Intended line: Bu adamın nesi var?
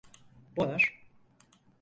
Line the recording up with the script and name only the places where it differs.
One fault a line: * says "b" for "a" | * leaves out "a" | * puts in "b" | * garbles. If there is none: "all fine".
* leaves out "adamın nesi"